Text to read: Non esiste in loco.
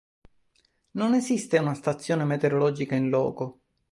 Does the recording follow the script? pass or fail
fail